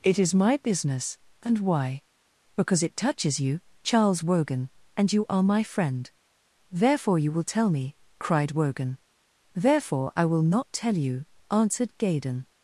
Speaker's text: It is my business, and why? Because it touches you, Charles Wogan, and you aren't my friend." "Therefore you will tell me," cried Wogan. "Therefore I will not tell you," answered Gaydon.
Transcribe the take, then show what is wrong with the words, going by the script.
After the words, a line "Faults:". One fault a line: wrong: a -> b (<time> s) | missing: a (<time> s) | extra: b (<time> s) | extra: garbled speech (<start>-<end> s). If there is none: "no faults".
It is my business, and why? Because it touches you, Charles Wogan, and you are my friend." "Therefore you will tell me," cried Wogan. "Therefore I will not tell you," answered Gaydon.
Faults:
wrong: aren't -> are (5.3 s)